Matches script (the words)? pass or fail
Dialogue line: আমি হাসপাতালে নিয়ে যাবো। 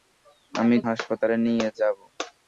pass